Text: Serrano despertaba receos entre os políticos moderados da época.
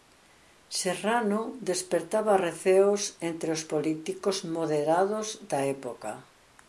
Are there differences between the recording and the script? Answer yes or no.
no